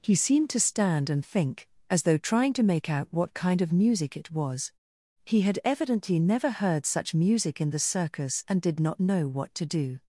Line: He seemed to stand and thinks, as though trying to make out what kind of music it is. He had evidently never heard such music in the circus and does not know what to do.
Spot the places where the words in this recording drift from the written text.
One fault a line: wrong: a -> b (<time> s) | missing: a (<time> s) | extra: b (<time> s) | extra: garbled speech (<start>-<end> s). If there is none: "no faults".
wrong: thinks -> think (1.2 s)
wrong: is -> was (4.3 s)
wrong: does -> did (8.6 s)